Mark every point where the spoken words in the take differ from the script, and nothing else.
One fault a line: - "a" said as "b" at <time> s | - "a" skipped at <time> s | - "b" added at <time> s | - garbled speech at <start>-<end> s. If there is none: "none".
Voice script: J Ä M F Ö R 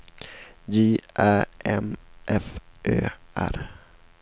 none